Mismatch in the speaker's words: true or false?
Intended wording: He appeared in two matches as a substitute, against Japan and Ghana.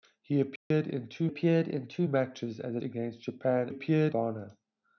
true